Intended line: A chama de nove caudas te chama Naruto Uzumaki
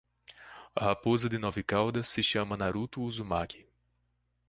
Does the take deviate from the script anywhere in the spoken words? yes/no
yes